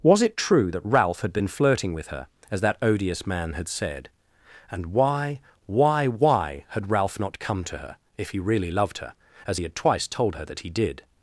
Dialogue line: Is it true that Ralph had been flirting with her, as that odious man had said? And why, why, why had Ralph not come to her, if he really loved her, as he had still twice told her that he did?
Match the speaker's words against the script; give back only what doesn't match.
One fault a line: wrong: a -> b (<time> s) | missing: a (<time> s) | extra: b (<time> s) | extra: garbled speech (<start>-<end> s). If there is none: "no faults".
wrong: Is -> Was (0.0 s)
missing: still (9.7 s)